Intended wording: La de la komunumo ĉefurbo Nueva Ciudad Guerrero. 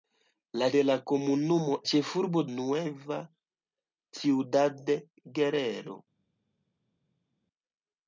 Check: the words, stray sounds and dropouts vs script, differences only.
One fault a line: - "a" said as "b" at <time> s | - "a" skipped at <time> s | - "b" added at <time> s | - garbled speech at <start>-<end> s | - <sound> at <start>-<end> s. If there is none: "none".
none